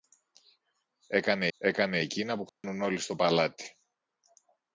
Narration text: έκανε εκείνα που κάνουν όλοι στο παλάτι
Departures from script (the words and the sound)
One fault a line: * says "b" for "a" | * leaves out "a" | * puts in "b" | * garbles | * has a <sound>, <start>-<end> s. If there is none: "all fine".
* puts in "έκανε"
* has a dropout, 2.5-2.6 s